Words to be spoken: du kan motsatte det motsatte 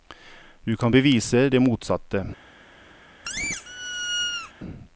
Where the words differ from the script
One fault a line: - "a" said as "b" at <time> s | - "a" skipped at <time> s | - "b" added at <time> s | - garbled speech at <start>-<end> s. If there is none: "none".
- "motsatte" said as "bevise" at 0.9 s